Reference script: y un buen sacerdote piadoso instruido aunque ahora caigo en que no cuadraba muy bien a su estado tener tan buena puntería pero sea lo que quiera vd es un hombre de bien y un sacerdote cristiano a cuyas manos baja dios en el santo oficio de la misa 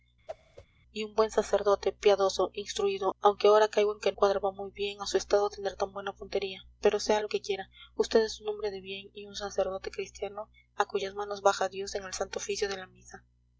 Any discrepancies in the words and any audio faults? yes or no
yes